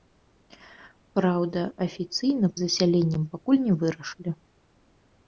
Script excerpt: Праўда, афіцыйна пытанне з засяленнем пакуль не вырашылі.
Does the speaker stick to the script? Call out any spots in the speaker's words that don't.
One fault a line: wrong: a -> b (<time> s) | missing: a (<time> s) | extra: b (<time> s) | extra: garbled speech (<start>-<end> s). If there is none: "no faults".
missing: пытанне з (2.5 s)